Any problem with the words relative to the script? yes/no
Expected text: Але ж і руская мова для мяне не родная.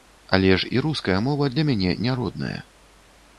no